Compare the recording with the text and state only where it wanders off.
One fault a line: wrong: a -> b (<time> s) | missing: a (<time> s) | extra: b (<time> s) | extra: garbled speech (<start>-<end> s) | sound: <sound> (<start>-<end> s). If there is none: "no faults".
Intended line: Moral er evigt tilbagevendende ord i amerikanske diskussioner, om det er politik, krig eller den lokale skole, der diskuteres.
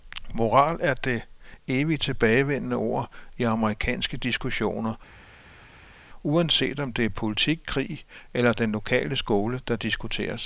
extra: det (0.9 s)
extra: uanset (6.2 s)